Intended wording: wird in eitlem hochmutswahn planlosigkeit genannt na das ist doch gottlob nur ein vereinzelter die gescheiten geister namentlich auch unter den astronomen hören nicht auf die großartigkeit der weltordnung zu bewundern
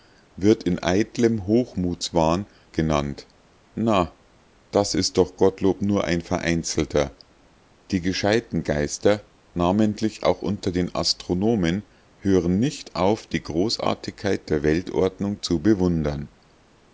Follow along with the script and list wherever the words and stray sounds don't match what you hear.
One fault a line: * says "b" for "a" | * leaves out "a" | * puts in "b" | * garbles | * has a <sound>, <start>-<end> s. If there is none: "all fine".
* leaves out "planlosigkeit"